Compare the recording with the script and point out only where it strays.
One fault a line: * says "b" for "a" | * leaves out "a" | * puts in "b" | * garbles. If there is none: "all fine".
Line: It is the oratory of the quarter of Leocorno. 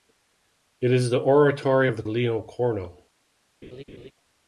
* leaves out "quarter of"